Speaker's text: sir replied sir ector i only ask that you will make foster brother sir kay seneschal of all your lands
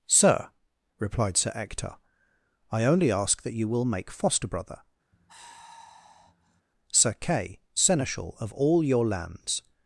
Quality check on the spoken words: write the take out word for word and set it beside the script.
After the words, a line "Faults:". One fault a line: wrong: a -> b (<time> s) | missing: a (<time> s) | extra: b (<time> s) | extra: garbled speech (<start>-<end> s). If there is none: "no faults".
sir replied sir ector i only ask that you will make foster brother sir kay seneschal of all your lands
Faults:
no faults